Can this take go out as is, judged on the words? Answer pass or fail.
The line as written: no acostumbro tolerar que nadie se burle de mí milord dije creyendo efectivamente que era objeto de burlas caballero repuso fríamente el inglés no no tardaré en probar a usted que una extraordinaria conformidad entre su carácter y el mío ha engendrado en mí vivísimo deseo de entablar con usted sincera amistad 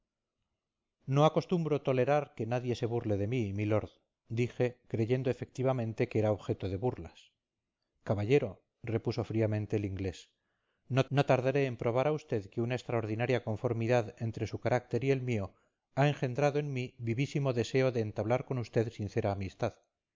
pass